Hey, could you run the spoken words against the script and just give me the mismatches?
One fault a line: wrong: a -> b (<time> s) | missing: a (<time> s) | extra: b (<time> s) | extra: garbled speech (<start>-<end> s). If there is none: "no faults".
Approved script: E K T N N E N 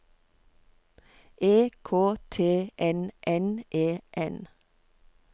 no faults